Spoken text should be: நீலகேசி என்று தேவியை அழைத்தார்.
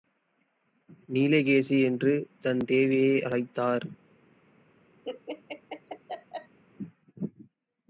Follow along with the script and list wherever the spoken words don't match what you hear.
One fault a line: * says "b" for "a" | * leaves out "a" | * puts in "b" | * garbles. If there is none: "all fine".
* puts in "தன்"